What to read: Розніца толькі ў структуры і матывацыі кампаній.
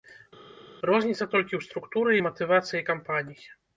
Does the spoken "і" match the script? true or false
true